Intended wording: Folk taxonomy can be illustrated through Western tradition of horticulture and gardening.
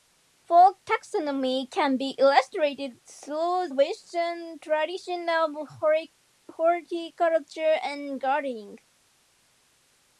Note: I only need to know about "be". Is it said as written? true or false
true